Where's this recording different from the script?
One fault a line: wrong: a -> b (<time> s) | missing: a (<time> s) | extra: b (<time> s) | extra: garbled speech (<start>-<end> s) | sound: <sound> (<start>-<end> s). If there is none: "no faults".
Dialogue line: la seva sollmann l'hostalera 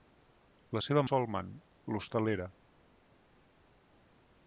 no faults